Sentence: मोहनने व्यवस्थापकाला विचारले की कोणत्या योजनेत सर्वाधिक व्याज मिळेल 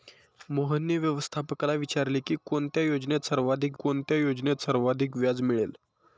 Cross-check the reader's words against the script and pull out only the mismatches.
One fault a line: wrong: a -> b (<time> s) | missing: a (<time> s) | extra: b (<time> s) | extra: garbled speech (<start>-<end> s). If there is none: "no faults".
extra: कोणत्या योजनेत सर्वाधिक (3.8 s)